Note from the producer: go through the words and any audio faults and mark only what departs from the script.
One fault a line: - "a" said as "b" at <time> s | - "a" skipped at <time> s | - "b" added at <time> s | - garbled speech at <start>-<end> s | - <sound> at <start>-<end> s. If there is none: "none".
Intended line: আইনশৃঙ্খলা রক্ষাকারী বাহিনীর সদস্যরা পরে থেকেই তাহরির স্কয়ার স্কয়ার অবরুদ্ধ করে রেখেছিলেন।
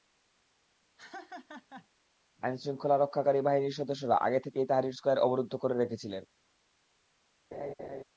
- laugh at 1.0-1.9 s
- "পরে" said as "আগে" at 4.2 s
- "স্কয়ার" skipped at 5.2 s
- laugh at 7.5-8.0 s